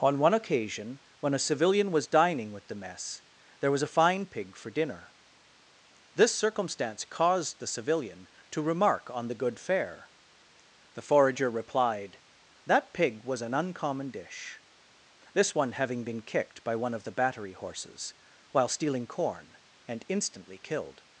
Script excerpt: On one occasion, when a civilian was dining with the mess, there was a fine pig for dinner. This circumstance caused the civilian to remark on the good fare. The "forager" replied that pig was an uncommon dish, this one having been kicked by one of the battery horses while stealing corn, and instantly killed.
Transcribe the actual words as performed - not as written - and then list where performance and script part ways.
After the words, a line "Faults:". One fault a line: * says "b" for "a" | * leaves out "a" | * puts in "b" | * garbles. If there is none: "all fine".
On one occasion, when a civilian was dining with the mess, there was a fine pig for dinner. This circumstance caused the civilian to remark on the good fare. The "forager" replied that pig was an uncommon dish, this one having been kicked by one of the battery horses while stealing corn, and instantly killed.
Faults:
all fine